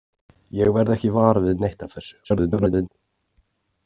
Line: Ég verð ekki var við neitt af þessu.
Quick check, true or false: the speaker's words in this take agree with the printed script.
false